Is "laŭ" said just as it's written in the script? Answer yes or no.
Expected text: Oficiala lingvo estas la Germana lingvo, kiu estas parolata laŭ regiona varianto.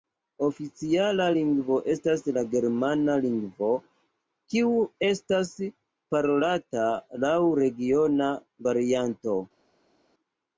yes